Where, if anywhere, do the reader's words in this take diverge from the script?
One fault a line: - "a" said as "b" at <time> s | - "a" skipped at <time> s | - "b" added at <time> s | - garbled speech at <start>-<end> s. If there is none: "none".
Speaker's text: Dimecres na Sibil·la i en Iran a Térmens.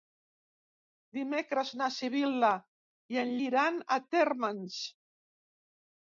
none